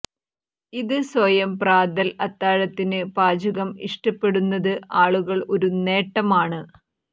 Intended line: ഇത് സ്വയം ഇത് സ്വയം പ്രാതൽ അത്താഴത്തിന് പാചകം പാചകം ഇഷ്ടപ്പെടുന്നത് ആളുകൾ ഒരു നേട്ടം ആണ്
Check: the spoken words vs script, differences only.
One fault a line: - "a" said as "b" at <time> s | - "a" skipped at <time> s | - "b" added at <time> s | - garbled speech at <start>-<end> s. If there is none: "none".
- "ഇത് സ്വയം" skipped at 1.5 s
- "പാചകം" skipped at 3.7 s